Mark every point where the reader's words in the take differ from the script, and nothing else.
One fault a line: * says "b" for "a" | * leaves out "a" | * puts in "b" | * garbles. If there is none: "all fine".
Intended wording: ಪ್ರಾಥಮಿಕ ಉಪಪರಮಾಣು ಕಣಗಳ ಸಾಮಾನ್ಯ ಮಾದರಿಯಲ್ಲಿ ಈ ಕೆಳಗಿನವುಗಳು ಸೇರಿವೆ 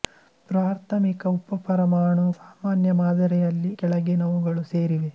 * leaves out "ಕಣಗಳ"
* leaves out "ಈ"